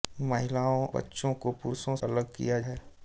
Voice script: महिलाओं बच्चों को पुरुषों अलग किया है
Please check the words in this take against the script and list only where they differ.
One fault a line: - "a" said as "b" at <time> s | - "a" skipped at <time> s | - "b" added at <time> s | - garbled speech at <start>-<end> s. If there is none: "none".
none